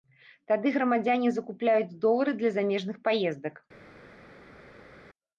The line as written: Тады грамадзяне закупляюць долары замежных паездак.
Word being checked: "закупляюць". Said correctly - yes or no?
yes